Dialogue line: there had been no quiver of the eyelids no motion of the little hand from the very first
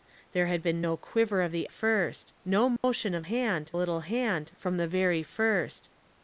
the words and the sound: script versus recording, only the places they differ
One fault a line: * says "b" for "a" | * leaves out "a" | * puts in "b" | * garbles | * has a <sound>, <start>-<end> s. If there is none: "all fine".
* says "first" for "eyelids"
* has a dropout, 2.8-2.8 s
* says "hand" for "the"